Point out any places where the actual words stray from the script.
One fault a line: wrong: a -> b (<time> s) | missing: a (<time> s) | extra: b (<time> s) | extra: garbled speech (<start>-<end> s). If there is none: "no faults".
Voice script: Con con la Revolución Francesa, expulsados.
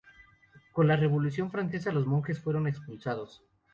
missing: con (0.9 s)
extra: los monjes fueron (1.9 s)